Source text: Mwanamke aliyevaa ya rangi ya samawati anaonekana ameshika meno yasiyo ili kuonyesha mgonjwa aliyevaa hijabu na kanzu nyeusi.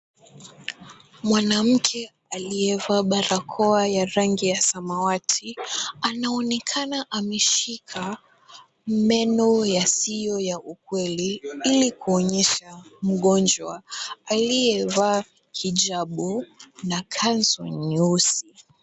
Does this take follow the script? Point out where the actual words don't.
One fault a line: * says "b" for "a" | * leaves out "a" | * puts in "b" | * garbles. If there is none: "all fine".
* puts in "barakoa"
* puts in "ya ukweli"